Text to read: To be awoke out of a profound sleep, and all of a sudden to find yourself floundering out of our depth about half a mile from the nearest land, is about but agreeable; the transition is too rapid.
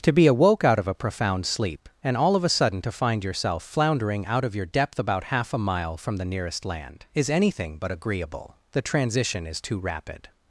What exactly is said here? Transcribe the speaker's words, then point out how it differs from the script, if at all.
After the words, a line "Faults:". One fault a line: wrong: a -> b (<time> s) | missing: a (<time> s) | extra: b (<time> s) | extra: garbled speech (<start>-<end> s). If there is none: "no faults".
To be awoke out of a profound sleep, and all of a sudden to find yourself floundering out of your depth about half a mile from the nearest land, is anything but agreeable; the transition is too rapid.
Faults:
wrong: our -> your (4.5 s)
wrong: about -> anything (7.3 s)